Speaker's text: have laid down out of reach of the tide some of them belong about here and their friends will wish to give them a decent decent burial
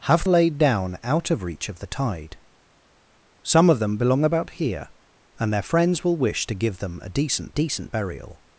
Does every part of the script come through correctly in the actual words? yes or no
yes